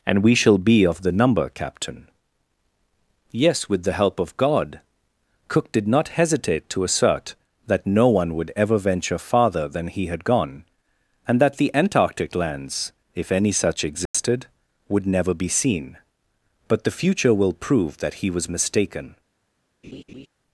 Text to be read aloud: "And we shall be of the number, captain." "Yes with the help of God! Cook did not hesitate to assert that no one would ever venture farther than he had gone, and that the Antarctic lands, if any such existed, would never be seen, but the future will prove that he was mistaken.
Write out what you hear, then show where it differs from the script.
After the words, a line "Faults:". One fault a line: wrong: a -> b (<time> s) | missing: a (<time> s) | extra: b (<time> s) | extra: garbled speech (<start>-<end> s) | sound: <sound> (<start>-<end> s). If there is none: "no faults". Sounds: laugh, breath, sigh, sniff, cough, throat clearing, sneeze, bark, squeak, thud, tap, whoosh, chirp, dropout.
"And we shall be of the number, captain." "Yes with the help of God! Cook did not hesitate to assert that no one would ever venture farther than he had gone, and that the Antarctic lands, if any such existed, would never be seen, but the future will prove that he was mistaken.
Faults:
sound: dropout (14.1-14.1 s)
sound: laugh (19.8-20.3 s)